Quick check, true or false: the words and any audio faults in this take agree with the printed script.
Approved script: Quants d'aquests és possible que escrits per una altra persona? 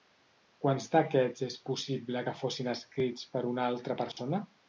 false